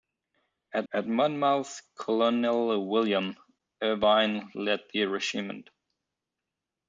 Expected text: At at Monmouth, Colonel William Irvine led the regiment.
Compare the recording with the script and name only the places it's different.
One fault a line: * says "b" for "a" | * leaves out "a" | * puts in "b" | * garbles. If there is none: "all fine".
all fine